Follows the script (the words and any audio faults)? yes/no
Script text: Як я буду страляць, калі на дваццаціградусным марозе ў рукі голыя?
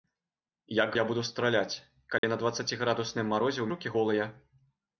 no